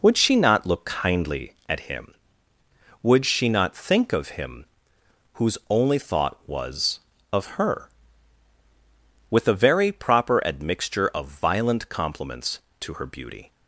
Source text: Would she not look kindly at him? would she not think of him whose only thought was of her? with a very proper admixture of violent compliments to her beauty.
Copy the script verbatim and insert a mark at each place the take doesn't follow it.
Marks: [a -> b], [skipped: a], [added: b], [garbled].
Would she not look kindly at him? would she not think of him whose only thought was of her? with a very proper admixture of violent compliments to her beauty.